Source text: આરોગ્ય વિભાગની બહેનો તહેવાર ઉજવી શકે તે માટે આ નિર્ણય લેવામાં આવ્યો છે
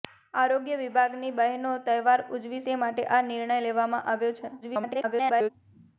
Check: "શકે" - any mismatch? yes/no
yes